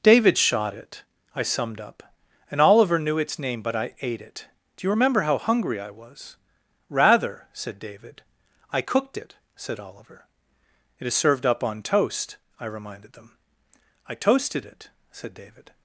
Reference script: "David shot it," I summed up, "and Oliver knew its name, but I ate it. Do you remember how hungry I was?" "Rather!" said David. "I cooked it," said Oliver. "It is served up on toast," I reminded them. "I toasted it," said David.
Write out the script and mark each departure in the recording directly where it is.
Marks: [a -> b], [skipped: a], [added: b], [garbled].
"David shot it," I summed up, "and Oliver knew its name, but I ate it. Do you remember how hungry I was?" "Rather!" said David. "I cooked it," said Oliver. "It is served up on toast," I reminded them. "I toasted it," said David.